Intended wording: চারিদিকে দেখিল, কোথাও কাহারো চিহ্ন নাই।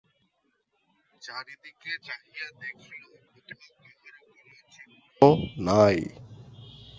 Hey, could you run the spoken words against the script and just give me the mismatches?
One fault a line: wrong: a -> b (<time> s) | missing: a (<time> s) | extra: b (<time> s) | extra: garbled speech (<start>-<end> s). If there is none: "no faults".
extra: চাহিয়া (2.1 s)
extra: কোনো (4.4 s)